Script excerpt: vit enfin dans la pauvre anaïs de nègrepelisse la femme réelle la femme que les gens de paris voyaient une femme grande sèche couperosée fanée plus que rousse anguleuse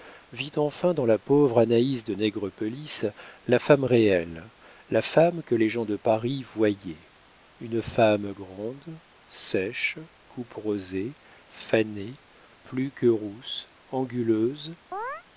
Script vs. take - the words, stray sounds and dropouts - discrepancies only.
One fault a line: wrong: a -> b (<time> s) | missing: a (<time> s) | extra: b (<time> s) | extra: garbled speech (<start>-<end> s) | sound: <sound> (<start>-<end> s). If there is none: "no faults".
sound: chirp (14.9-15.2 s)